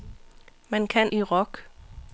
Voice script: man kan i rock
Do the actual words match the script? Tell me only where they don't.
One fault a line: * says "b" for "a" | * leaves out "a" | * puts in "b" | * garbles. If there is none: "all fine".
all fine